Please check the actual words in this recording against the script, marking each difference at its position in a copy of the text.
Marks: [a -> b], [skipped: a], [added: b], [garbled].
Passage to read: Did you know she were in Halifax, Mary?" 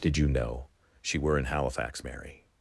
Did you know she were in Halifax, Mary?"